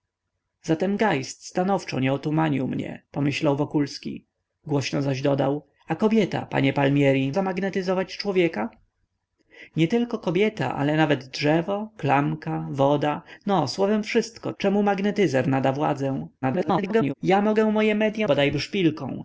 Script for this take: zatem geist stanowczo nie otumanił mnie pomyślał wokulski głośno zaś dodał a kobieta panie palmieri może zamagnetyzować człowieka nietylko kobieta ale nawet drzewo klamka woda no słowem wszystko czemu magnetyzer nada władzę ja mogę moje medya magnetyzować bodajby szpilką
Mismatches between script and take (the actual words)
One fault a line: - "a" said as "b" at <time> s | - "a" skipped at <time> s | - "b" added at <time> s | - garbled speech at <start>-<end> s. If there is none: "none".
- "może" skipped at 7.3 s
- garbled speech at 16.4-17.1 s
- "magnetyzować" skipped at 18.3 s